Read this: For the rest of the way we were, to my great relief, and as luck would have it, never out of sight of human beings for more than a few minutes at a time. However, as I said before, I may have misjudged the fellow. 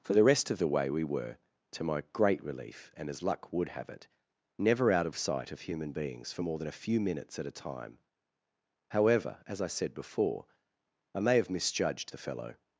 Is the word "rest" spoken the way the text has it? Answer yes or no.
yes